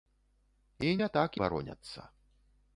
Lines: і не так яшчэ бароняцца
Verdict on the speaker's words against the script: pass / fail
fail